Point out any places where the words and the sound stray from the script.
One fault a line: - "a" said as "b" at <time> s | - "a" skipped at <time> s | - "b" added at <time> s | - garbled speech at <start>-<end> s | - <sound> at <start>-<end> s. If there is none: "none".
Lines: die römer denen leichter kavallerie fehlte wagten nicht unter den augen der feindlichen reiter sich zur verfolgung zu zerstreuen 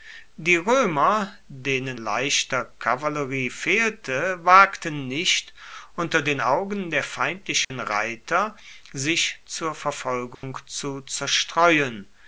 - dropout at 7.6-7.7 s
- dropout at 10.3-10.4 s